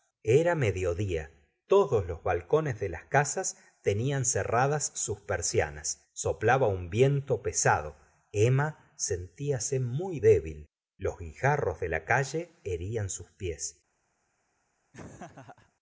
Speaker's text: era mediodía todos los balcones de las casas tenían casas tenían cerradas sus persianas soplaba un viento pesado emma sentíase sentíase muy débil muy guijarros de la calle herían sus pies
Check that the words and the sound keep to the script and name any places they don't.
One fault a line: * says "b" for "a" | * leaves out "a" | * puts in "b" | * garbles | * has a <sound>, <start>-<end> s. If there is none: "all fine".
* leaves out "casas tenían"
* leaves out "sentíase"
* says "los" for "muy"
* has a laugh, 14.9-15.7 s